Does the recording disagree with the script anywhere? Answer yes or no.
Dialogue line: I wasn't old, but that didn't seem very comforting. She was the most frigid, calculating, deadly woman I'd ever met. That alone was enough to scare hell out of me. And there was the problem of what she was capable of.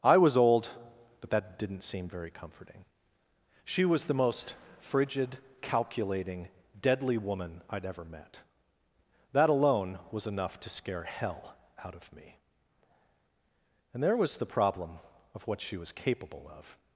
yes